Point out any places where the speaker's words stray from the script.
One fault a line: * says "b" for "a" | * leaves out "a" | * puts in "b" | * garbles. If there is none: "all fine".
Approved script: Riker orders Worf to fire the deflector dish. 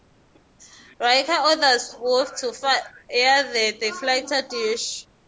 all fine